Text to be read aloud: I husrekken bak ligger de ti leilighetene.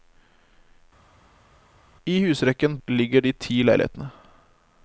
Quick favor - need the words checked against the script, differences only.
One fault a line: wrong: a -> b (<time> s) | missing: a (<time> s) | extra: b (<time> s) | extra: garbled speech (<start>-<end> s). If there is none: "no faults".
missing: bak (2.8 s)